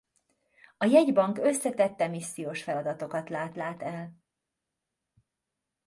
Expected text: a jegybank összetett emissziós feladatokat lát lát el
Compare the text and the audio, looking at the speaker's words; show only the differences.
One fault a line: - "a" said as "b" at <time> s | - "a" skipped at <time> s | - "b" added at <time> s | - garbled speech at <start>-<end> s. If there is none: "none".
none